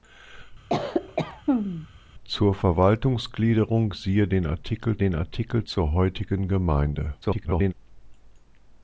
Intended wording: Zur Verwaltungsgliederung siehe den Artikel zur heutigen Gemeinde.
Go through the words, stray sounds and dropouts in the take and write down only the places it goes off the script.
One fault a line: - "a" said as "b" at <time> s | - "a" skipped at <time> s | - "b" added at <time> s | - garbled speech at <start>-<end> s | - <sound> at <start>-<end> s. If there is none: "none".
- cough at 0.7-1.9 s
- "den Artikel" added at 5.0 s
- garbled speech at 7.2-7.7 s